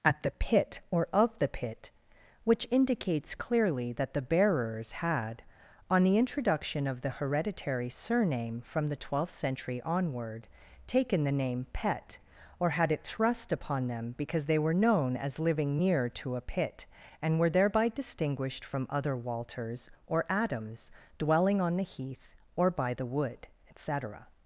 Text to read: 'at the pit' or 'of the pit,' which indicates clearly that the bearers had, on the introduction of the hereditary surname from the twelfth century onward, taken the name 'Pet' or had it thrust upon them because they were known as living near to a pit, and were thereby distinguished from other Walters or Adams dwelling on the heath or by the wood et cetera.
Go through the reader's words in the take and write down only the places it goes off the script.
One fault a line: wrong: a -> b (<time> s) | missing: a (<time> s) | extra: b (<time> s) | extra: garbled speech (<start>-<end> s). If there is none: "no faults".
no faults